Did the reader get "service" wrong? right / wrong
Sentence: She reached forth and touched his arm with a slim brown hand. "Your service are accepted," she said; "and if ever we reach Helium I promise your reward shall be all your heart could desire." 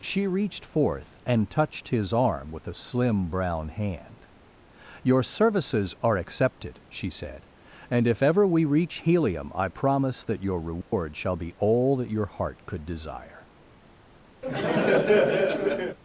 wrong